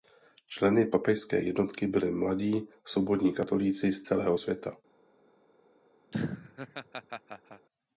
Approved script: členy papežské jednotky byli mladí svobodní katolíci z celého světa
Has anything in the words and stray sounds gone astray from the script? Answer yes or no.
yes